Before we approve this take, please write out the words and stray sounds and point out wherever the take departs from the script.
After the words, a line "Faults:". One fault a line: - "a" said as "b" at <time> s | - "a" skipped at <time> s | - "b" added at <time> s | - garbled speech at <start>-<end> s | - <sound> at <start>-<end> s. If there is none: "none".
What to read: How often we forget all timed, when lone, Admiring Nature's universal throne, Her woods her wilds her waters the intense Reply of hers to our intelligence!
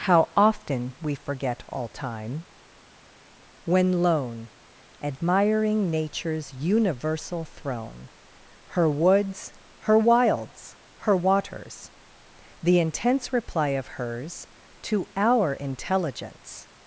How often we forget all time, when lone, Admiring Nature's universal throne, Her woods her wilds her waters the intense Reply of hers to our intelligence!
Faults:
- "timed" said as "time" at 1.9 s